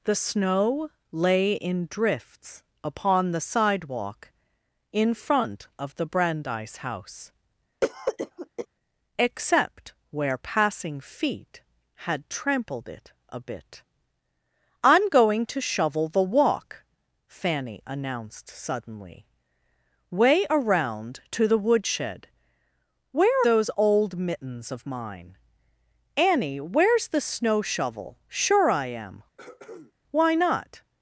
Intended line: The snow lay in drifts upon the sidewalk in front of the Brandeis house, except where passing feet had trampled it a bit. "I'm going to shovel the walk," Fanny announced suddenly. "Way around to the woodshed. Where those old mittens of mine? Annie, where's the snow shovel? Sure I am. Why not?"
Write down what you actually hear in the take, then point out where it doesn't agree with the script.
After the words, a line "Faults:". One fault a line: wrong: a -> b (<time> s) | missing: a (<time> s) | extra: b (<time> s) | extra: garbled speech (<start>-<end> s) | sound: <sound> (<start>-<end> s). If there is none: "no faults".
The snow lay in drifts upon the sidewalk in front of the Brandeis house, except where passing feet had trampled it a bit. "I'm going to shovel the walk," Fanny announced suddenly. "Way around to the woodshed. Where those old mittens of mine? Annie, where's the snow shovel? Sure I am. Why not?"
Faults:
sound: cough (7.8-8.7 s)
sound: throat clearing (29.4-29.9 s)